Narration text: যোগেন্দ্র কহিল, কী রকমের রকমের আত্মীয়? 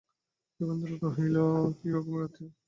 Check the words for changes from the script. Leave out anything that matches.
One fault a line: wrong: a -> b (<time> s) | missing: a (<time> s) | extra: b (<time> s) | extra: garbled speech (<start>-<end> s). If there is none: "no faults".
missing: রকমের (2.2 s)